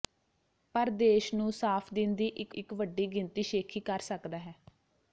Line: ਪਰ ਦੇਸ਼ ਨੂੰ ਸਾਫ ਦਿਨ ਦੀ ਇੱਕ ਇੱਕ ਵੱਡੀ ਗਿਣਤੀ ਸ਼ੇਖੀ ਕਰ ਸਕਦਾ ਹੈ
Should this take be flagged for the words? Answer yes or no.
no